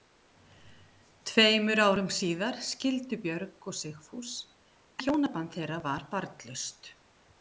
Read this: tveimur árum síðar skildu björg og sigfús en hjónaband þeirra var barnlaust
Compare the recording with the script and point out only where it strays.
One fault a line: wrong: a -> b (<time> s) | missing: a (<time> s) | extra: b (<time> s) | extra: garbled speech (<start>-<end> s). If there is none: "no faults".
missing: en (4.4 s)